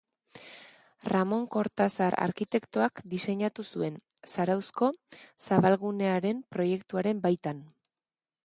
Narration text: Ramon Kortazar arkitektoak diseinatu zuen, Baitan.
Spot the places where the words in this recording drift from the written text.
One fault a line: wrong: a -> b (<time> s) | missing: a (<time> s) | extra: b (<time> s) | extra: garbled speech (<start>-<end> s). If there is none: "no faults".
extra: Zarauzko zabalgunearen proiektuaren (4.3 s)